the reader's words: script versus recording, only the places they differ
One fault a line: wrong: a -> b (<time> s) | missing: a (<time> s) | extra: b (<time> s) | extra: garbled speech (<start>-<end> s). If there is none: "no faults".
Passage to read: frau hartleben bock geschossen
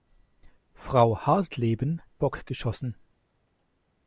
no faults